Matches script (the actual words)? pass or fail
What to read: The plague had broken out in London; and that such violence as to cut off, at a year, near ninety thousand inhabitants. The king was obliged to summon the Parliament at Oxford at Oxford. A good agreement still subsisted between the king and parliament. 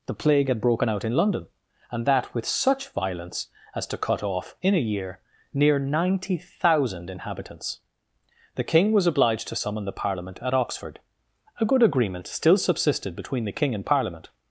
fail